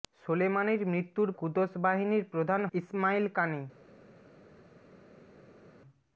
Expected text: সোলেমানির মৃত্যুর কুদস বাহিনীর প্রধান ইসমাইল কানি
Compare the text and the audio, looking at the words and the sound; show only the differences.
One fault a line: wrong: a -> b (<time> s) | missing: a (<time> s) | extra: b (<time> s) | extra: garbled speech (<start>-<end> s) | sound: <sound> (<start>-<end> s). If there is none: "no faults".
no faults